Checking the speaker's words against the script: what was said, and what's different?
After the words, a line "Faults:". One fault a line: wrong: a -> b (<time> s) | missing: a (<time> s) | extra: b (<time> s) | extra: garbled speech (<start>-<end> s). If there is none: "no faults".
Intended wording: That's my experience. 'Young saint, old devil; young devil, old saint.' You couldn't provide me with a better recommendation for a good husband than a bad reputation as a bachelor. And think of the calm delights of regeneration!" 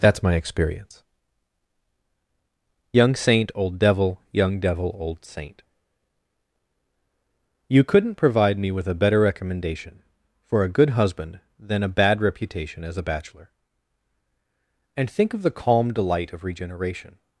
That's my experience. 'Young saint, old devil; young devil, old saint.' You couldn't provide me with a better recommendation for a good husband than a bad reputation as a bachelor. And think of the calm delight of regeneration!"
Faults:
wrong: delights -> delight (15.9 s)